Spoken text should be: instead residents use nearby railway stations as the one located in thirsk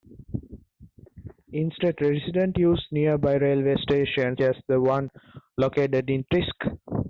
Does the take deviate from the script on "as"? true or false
false